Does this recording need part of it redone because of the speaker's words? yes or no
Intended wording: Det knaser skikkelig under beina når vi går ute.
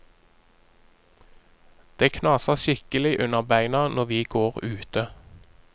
no